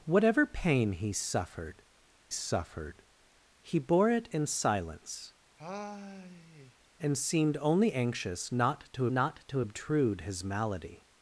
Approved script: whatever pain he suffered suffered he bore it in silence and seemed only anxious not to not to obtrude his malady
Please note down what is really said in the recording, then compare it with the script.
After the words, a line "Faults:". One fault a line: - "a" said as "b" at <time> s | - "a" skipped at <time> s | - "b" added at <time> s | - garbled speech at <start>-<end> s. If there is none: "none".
whatever pain he suffered suffered he bore it in silence and seemed only anxious not to not to obtrude his malady
Faults:
none